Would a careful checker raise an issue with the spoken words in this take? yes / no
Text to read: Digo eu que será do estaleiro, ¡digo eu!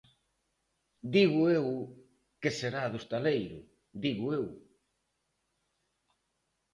no